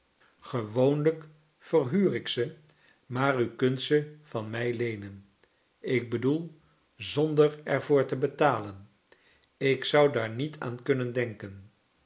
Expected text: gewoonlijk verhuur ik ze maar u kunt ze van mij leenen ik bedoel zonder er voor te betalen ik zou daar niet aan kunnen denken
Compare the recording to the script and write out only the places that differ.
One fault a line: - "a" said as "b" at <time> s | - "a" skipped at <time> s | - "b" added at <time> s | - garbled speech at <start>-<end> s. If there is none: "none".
none